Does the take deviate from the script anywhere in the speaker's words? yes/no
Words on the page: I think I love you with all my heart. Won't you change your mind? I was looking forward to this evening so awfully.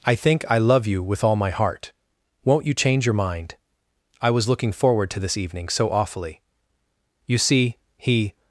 yes